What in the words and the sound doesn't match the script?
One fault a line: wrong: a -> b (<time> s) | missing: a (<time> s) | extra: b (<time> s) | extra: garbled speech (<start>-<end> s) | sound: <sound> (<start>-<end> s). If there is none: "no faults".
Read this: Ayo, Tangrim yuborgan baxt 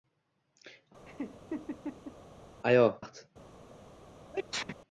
sound: laugh (1.1-2.2 s)
missing: Tangrim yuborgan (2.9 s)
sound: sneeze (4.3-4.8 s)